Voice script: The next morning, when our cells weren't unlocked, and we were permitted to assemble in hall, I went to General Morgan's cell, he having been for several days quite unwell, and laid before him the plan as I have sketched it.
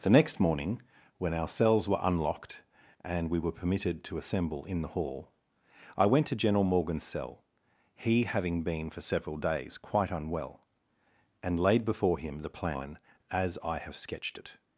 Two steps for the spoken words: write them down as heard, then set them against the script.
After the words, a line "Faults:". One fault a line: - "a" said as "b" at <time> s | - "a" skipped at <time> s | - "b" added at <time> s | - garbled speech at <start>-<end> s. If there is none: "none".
The next morning, when our cells were unlocked, and we were permitted to assemble in the hall, I went to General Morgan's cell, he having been for several days quite unwell, and laid before him the plan as I have sketched it.
Faults:
- "weren't" said as "were" at 1.9 s
- "the" added at 4.8 s